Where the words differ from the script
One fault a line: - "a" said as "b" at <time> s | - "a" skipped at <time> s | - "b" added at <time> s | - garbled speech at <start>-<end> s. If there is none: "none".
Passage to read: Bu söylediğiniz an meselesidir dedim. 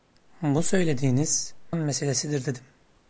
none